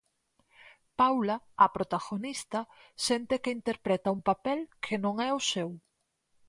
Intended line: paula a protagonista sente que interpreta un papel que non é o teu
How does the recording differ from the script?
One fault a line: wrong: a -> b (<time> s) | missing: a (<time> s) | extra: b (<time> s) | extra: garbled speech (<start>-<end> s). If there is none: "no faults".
wrong: teu -> seu (5.5 s)